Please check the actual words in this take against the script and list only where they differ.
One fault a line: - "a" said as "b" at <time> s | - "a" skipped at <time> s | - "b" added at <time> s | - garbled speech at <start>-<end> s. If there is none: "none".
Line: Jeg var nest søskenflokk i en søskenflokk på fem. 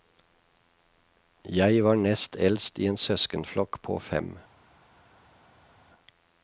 - "søskenflokk" said as "eldst" at 2.4 s